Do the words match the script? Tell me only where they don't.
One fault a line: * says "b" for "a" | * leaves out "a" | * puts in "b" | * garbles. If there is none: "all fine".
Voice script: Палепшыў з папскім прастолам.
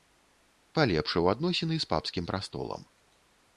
* puts in "адносіны"